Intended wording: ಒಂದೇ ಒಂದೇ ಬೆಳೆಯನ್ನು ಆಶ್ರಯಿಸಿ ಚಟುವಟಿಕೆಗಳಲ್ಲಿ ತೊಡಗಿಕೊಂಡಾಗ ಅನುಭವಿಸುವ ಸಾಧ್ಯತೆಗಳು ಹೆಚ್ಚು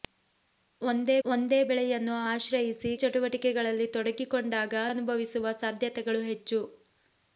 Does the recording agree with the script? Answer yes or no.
yes